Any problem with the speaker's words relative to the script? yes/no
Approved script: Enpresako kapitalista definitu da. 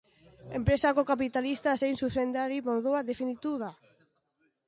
yes